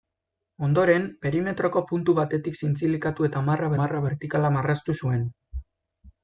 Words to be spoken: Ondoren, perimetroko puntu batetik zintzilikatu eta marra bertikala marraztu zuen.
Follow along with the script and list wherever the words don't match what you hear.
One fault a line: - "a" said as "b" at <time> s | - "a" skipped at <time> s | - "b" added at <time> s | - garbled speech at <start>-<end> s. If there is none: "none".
- "marra" added at 3.8 s